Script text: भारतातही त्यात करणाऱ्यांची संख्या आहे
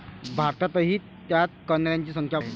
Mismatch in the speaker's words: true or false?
false